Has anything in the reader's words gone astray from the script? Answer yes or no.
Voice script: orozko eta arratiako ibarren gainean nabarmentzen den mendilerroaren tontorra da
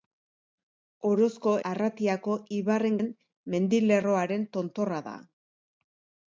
yes